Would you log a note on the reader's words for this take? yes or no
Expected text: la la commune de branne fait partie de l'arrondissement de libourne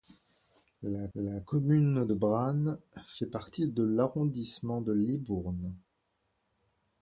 no